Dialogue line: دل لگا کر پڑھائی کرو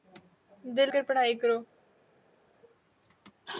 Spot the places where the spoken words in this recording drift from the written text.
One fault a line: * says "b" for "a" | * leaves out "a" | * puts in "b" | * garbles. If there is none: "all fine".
* leaves out "لگا"